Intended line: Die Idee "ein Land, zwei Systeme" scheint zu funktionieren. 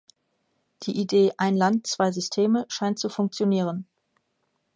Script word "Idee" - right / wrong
right